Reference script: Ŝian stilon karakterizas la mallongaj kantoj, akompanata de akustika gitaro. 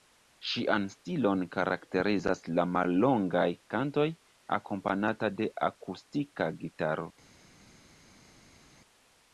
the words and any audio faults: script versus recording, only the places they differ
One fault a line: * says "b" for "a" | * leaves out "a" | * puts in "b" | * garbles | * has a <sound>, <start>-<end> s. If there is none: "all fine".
all fine